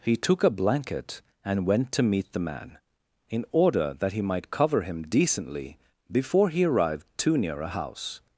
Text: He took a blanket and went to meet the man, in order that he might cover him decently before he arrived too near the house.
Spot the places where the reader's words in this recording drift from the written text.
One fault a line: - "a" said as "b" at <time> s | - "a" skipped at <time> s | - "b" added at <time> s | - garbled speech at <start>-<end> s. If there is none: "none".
- "the" said as "a" at 7.6 s